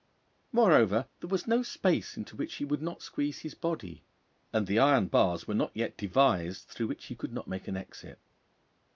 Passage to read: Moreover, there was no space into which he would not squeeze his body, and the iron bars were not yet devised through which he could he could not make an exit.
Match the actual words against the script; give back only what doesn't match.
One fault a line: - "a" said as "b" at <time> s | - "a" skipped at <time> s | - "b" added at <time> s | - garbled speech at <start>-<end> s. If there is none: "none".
- "he could" skipped at 7.3 s